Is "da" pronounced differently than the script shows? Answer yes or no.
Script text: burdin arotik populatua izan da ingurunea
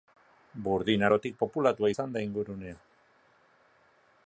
no